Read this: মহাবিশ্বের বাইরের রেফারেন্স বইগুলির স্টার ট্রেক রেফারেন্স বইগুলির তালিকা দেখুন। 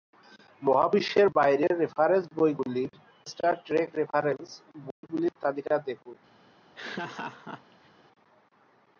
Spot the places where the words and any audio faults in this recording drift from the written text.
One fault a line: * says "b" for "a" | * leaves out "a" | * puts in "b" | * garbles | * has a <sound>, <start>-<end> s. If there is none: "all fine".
* has a dropout, 4.9-5.0 s
* has a laugh, 6.7-7.9 s